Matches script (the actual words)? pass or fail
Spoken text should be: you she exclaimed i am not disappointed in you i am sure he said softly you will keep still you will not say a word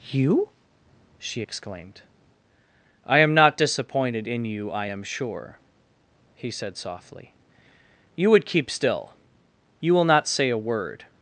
fail